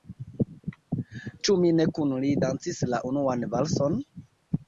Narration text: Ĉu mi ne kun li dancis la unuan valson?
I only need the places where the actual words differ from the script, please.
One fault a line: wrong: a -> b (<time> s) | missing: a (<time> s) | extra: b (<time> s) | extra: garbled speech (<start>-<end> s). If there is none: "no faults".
no faults